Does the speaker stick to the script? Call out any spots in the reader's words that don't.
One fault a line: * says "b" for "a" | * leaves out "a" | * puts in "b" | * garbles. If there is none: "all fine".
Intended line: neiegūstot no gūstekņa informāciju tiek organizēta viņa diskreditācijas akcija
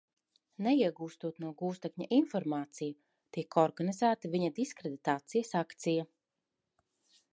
all fine